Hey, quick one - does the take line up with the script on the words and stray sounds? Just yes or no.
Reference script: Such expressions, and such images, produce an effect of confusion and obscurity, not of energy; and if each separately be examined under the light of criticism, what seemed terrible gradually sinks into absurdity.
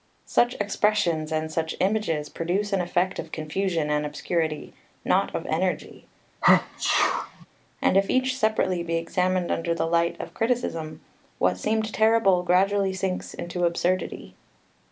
no